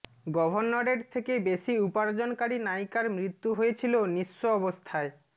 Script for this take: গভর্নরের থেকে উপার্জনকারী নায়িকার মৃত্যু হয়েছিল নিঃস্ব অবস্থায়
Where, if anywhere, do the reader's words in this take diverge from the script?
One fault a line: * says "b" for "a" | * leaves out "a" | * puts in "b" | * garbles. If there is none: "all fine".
* puts in "বেশি"